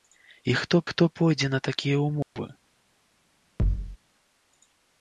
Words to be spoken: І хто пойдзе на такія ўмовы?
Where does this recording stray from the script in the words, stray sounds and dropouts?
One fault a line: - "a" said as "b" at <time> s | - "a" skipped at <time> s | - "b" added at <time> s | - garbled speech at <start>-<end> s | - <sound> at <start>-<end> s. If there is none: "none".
- "хто" added at 0.9 s
- dropout at 2.2-2.4 s
- thud at 3.6-4.0 s